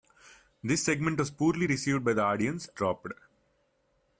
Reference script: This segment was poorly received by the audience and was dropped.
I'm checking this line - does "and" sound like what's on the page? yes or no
no